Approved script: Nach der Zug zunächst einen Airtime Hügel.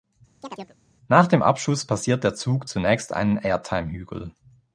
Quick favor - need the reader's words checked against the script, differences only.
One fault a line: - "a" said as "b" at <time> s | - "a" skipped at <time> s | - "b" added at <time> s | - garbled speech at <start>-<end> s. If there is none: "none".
- "dem Abschuss passiert" added at 1.3 s